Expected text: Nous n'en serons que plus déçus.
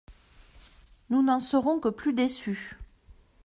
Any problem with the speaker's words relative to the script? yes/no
no